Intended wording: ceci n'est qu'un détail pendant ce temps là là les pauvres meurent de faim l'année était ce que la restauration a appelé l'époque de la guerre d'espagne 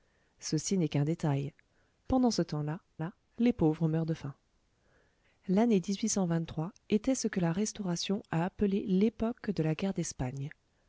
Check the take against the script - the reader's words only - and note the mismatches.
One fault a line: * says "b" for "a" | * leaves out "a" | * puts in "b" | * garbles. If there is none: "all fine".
all fine